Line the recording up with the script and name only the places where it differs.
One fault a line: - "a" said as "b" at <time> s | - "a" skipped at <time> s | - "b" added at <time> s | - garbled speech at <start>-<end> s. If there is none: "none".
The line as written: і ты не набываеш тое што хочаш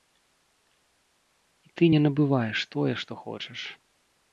none